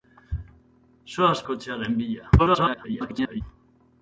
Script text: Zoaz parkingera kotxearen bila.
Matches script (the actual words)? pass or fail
fail